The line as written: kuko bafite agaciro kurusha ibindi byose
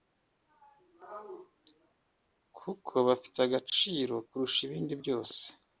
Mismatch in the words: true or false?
false